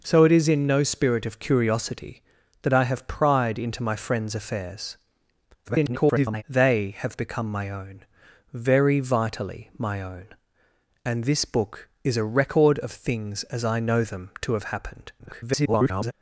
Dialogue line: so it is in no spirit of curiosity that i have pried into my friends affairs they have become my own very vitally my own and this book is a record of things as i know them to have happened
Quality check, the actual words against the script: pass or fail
fail